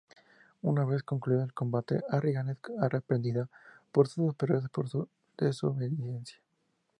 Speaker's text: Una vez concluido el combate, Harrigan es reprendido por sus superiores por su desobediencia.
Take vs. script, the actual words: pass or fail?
pass